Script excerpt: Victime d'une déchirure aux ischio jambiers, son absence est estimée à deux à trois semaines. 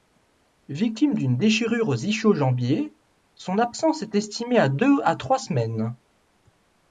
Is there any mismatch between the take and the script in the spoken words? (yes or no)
no